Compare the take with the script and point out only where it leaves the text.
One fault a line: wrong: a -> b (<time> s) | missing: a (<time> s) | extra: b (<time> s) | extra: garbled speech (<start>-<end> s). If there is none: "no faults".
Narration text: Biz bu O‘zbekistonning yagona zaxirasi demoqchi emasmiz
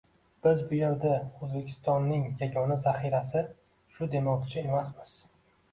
extra: yerda (0.8 s)
extra: shu (4.0 s)